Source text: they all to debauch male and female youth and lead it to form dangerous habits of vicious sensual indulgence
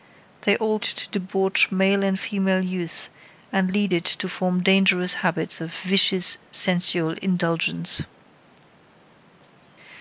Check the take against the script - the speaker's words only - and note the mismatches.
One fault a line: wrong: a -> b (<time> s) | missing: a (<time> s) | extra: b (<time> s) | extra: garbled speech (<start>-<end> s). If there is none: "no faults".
no faults